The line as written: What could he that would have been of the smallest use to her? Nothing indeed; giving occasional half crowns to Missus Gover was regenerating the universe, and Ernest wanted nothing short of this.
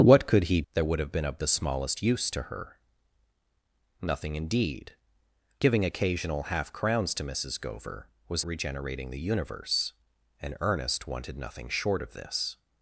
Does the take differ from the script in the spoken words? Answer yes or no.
no